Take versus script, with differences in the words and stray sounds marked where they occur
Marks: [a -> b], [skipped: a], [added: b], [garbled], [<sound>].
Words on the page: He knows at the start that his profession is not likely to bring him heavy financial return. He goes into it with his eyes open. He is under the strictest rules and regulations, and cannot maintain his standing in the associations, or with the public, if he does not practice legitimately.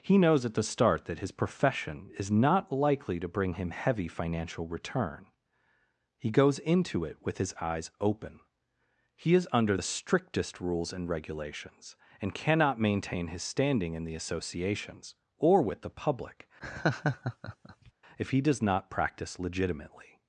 He knows at the start that his profession is not likely to bring him heavy financial return. He goes into it with his eyes open. He is under the strictest rules and regulations, and cannot maintain his standing in the associations, or with the public, [laugh] if he does not practice legitimately.